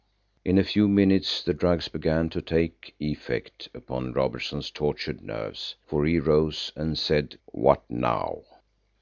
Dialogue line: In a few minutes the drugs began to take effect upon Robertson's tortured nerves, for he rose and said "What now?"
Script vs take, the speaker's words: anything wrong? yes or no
no